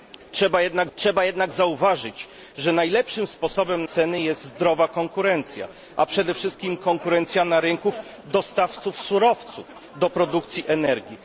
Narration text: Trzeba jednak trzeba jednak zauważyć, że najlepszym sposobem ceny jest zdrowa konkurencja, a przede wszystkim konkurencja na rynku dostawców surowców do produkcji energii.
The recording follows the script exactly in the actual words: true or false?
true